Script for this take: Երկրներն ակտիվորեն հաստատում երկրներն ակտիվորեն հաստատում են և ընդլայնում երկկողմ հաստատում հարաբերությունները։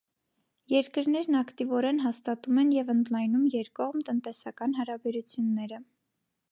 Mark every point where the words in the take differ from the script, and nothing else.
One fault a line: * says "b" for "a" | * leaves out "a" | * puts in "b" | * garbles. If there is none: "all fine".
* leaves out "երկրներն ակտիվորեն հաստատում"
* says "տնտեսական" for "հաստատում"